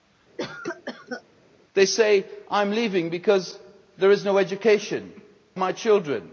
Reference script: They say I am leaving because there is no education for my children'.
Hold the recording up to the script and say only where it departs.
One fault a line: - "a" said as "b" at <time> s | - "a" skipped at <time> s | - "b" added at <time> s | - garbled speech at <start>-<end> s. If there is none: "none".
- "for" skipped at 5.1 s